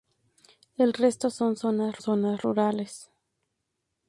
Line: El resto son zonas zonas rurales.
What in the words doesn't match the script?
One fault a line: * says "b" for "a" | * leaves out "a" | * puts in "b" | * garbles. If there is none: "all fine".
all fine